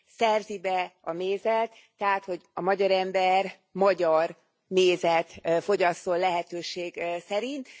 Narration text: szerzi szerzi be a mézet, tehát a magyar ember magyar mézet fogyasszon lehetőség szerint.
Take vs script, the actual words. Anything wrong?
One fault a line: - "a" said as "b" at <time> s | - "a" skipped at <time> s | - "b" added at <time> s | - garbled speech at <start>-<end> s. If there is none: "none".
- "szerzi" skipped at 0.6 s
- "hogy" added at 2.2 s